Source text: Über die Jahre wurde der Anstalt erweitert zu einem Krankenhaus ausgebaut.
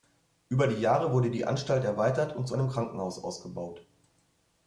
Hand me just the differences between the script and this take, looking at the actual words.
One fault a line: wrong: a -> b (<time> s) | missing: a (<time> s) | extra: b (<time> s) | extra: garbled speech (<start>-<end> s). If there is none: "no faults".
wrong: der -> die (1.3 s)
extra: und (2.4 s)